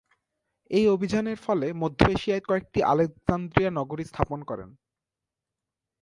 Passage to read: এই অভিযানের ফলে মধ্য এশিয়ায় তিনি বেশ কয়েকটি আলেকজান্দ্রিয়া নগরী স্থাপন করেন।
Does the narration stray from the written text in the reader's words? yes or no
yes